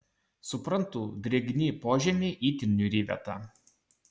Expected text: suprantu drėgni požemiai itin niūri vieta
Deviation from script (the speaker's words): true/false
false